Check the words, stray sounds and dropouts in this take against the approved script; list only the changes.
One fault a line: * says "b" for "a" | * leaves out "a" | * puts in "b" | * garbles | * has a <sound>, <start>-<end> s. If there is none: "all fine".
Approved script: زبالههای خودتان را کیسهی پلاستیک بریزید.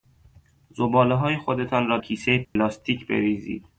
* has a dropout, 2.4-2.6 s